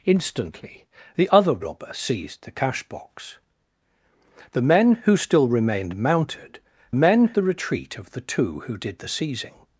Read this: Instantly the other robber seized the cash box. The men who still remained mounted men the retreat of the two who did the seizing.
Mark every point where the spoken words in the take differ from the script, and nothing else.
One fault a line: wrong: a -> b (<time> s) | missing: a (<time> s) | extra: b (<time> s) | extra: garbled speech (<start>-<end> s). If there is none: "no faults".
no faults